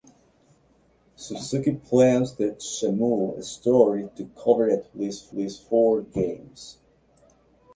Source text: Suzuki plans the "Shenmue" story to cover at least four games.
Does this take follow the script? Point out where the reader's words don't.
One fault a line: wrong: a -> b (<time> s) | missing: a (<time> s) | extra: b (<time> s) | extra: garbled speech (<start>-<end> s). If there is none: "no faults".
extra: least (5.3 s)